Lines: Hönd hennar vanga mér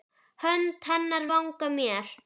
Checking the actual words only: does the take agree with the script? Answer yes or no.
yes